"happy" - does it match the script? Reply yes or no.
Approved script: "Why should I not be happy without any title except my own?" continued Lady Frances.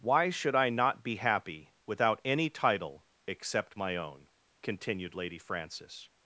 yes